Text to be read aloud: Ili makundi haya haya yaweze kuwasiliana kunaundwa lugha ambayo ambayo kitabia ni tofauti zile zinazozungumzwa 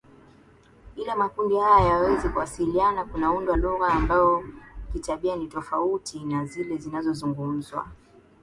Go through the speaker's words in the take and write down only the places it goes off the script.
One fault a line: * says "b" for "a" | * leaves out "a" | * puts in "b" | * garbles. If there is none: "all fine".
* leaves out "haya"
* leaves out "ambayo"
* puts in "na"